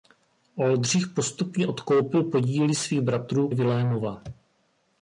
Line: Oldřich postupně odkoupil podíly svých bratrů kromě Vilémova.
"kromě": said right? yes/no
no